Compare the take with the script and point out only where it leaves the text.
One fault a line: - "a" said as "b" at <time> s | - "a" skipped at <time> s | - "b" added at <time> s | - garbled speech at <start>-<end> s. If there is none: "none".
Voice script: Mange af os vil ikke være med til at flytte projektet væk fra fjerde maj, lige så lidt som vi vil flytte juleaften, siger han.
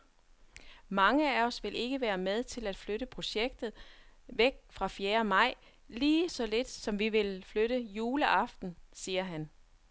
none